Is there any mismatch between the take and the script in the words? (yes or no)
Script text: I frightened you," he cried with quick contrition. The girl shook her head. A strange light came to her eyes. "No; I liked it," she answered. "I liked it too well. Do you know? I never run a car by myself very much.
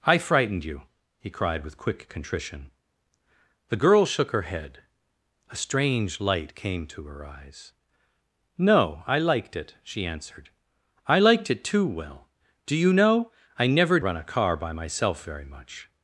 no